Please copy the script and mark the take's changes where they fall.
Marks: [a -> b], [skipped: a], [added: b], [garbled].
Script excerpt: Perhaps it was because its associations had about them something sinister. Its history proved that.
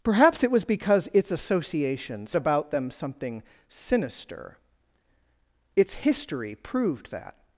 Perhaps it was because its associations [skipped: had] about them something sinister. Its history proved that.